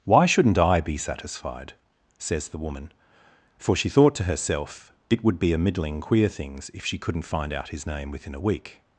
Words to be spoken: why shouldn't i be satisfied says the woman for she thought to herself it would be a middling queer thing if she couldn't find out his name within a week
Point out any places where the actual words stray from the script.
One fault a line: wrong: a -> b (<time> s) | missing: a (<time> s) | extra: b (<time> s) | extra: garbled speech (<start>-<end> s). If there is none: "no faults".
wrong: thing -> things (6.3 s)